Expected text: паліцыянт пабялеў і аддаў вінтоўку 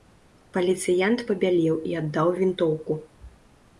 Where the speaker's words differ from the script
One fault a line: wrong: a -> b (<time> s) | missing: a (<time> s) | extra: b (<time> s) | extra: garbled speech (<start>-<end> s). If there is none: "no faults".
no faults